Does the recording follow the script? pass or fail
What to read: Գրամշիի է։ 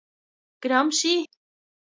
pass